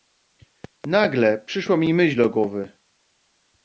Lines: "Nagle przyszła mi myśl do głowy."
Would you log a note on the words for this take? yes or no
no